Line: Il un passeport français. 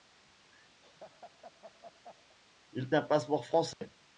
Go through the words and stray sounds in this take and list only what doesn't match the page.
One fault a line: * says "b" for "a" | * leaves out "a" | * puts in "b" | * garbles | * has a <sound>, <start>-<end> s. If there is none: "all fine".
* has a laugh, 0.8-2.4 s
* has a dropout, 3.7-3.8 s